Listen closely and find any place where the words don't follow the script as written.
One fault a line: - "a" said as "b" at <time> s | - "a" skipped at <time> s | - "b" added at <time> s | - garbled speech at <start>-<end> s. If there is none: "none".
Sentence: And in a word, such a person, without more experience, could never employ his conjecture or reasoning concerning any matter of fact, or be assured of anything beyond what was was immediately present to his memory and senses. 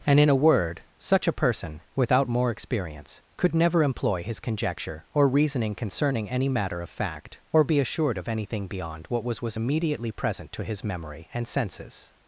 none